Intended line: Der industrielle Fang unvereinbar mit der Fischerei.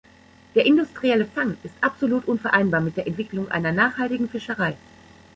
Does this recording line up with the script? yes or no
no